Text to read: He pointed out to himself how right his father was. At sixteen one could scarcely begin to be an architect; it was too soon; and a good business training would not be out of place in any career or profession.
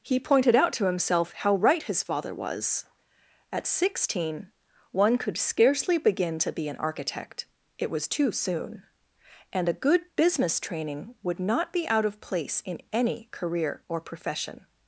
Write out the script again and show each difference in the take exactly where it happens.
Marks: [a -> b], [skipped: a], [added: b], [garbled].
He pointed out to himself how right his father was. At sixteen one could scarcely begin to be an architect; it was too soon; and a good business training would not be out of place in any career or profession.